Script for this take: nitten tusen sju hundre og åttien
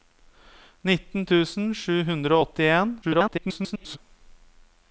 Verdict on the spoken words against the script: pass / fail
fail